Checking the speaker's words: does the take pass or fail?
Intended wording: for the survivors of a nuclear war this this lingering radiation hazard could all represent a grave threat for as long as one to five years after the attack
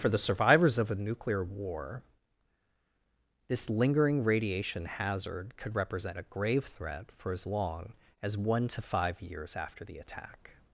fail